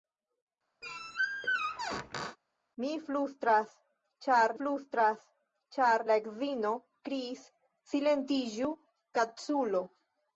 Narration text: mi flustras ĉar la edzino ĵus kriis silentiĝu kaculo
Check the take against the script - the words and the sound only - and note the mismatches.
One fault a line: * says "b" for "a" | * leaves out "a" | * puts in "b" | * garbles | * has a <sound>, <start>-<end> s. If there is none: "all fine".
* has a squeak, 0.8-2.4 s
* puts in "flustras ĉar"
* leaves out "ĵus"